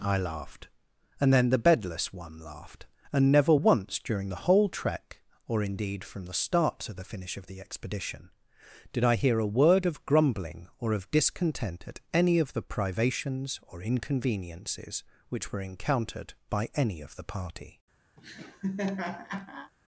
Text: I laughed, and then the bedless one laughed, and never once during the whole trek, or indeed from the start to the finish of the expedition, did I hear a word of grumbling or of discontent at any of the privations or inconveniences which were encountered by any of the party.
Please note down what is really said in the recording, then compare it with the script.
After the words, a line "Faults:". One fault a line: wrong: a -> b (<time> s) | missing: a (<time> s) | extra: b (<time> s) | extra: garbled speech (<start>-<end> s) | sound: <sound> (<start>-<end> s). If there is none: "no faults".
I laughed, and then the bedless one laughed, and never once during the whole trek, or indeed from the start to the finish of the expedition, did I hear a word of grumbling or of discontent at any of the privations or inconveniences which were encountered by any of the party.
Faults:
sound: laugh (18.2-19.7 s)